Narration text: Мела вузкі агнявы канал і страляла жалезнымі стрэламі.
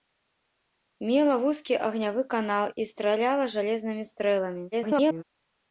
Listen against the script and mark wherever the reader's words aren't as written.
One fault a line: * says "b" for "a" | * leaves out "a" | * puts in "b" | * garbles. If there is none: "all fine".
* garbles